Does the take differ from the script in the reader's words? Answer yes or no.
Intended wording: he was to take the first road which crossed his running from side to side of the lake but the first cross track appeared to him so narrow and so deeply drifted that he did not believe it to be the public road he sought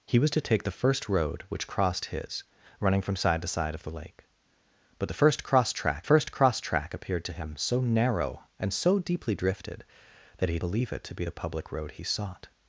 yes